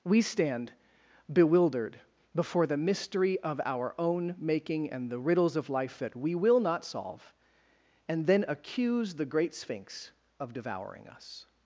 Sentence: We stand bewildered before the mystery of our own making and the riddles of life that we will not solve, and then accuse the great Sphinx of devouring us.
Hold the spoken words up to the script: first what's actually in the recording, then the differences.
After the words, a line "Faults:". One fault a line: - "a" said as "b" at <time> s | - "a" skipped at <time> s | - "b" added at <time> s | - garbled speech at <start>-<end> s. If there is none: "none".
We stand bewildered before the mystery of our own making and the riddles of life that we will not solve, and then accuse the great Sphinx of devouring us.
Faults:
none